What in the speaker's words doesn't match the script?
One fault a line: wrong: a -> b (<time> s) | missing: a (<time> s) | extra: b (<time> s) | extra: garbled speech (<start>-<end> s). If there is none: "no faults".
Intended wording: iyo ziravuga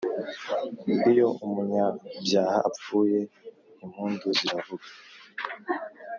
extra: umunyabyaha apfuye impundu (1.4 s)